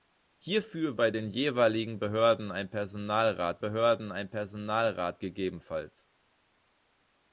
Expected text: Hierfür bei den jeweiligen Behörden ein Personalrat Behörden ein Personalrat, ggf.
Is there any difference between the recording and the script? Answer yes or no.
no